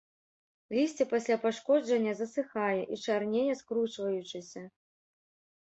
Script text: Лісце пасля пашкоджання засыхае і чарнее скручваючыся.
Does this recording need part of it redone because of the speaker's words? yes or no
no